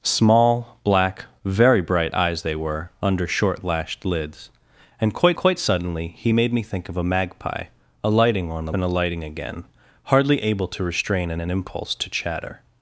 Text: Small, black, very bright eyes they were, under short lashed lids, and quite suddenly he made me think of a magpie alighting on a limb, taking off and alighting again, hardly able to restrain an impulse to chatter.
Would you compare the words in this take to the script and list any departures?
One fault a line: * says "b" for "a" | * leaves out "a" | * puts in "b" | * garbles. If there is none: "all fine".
* puts in "quite"
* leaves out "limb taking off"
* puts in "an"